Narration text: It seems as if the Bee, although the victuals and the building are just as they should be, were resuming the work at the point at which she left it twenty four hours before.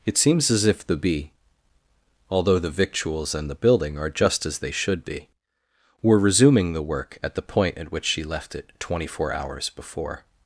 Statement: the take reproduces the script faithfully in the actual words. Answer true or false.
true